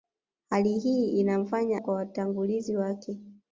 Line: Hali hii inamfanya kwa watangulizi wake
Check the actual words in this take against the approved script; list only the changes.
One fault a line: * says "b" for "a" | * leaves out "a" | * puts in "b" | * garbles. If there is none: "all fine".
all fine